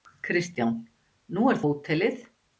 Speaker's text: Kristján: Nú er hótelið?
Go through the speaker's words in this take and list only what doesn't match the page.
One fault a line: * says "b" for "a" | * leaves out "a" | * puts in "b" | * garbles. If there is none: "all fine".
all fine